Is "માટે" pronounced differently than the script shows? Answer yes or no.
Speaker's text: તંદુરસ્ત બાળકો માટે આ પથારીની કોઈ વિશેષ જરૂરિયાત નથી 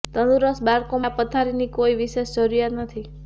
yes